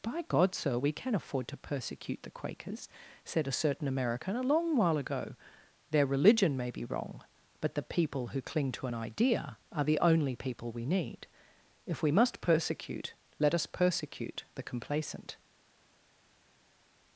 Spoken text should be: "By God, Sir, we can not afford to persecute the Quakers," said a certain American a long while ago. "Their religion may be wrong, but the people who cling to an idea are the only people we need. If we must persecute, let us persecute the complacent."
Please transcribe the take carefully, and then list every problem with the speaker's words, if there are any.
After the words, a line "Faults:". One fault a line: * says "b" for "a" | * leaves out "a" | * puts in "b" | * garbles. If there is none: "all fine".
"By God, Sir, we can afford to persecute the Quakers," said a certain American a long while ago. "Their religion may be wrong, but the people who cling to an idea are the only people we need. If we must persecute, let us persecute the complacent."
Faults:
* leaves out "not"